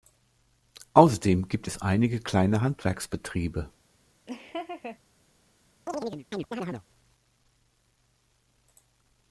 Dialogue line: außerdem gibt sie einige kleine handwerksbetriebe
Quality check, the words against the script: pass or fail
fail